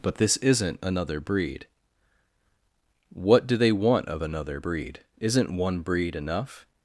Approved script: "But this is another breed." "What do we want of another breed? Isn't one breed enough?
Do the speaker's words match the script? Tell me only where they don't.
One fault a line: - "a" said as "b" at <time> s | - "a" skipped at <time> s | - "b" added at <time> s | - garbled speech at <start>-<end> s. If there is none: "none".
- "is" said as "isn't" at 0.4 s
- "we" said as "they" at 3.6 s